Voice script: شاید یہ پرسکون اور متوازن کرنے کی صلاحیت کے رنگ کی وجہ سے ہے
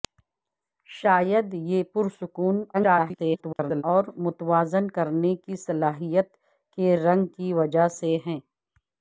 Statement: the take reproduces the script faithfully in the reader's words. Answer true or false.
false